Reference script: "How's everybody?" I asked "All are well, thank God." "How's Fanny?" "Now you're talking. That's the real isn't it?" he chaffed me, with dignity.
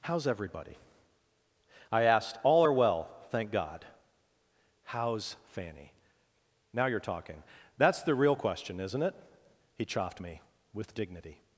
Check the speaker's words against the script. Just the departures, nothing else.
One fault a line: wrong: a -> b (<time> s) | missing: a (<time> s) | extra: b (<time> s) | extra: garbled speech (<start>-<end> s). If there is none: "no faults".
extra: question (8.3 s)